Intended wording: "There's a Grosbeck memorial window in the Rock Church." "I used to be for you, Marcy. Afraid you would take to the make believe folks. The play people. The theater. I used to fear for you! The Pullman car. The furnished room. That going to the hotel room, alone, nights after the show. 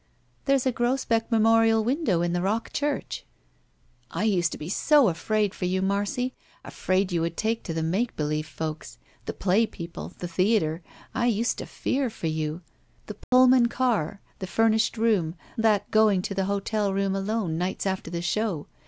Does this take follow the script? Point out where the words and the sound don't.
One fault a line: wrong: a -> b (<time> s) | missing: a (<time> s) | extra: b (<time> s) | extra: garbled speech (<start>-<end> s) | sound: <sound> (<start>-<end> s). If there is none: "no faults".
extra: so afraid (4.7 s)
sound: dropout (13.2-13.3 s)